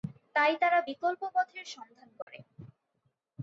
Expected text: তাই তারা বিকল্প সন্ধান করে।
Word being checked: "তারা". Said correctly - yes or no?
yes